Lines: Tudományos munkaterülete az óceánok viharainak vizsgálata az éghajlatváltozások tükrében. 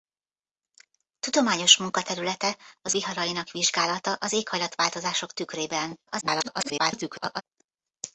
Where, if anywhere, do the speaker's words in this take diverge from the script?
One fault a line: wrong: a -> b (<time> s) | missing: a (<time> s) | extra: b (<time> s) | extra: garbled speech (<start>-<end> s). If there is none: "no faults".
missing: óceánok (3.0 s)
extra: garbled speech (6.1-7.4 s)